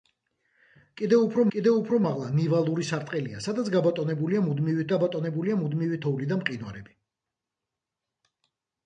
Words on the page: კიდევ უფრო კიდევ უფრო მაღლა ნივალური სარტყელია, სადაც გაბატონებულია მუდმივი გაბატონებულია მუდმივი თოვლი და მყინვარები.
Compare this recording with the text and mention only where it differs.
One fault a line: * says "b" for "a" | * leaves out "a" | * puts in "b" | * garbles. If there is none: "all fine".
all fine